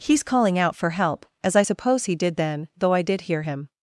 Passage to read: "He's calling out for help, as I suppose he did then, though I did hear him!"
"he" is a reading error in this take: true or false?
false